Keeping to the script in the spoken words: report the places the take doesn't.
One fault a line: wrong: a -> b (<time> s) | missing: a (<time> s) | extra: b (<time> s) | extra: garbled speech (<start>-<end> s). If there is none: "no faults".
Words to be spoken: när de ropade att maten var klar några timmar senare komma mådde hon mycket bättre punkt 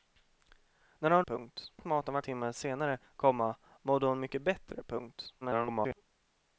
wrong: ropade -> punkt (1.2 s)
missing: klar några (2.2 s)
extra: garbled speech (5.4-6.0 s)